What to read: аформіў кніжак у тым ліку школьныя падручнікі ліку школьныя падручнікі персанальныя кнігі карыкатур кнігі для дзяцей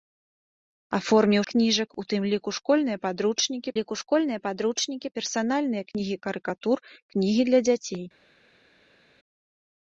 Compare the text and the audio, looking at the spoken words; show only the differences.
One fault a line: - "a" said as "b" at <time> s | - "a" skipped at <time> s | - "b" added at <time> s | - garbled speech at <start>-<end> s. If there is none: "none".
none